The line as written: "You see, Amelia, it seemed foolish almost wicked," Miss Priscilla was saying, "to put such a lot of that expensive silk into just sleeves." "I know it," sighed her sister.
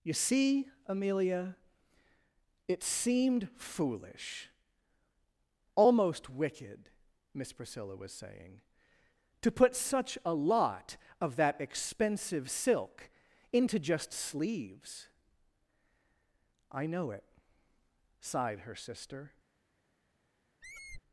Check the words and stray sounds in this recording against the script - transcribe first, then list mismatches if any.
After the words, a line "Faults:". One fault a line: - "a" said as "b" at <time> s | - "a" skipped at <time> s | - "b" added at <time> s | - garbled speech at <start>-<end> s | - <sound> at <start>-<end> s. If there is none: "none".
"You see, Amelia, it seemed foolish almost wicked," Miss Priscilla was saying, "to put such a lot of that expensive silk into just sleeves." "I know it," sighed her sister.
Faults:
- squeak at 20.6-21.0 s